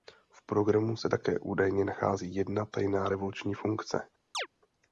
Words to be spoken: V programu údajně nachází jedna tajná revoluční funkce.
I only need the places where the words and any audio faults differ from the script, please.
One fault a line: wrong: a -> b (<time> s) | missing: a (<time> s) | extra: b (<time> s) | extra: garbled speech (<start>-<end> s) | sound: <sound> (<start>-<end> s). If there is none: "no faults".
extra: se také (1.0 s)
sound: chirp (4.3-4.5 s)